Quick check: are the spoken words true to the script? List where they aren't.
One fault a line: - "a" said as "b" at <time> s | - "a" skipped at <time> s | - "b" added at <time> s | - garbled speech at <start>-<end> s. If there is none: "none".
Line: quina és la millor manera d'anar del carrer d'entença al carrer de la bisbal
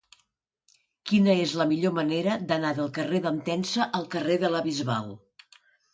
none